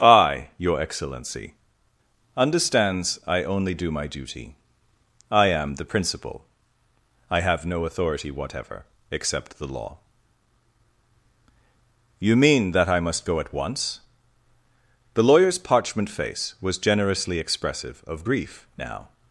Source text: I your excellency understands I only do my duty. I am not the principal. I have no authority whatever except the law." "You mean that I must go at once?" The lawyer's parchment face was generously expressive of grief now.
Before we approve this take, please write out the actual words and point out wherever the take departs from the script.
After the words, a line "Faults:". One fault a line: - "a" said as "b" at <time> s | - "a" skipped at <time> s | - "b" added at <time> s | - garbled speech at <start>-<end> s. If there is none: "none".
I your excellency understands I only do my duty. I am the principal. I have no authority whatever except the law." "You mean that I must go at once?" The lawyer's parchment face was generously expressive of grief now.
Faults:
- "not" skipped at 5.8 s